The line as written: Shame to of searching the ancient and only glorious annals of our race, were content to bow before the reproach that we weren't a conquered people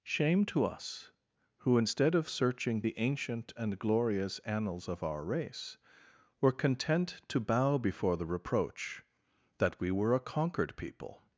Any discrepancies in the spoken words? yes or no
yes